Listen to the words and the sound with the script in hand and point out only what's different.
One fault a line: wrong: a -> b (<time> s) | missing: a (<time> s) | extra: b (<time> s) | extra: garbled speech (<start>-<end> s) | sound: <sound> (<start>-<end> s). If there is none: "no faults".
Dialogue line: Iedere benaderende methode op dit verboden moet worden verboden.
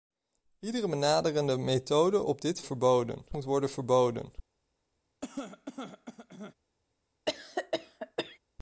sound: cough (5.2-6.5 s)
sound: cough (7.3-8.4 s)